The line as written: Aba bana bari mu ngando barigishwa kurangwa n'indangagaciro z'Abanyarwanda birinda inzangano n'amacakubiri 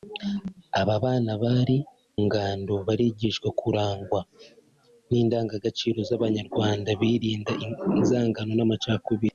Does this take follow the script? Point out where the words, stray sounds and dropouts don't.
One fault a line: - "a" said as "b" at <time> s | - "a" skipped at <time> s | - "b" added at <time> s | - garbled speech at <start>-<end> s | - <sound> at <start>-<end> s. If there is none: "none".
- "mu" skipped at 1.8 s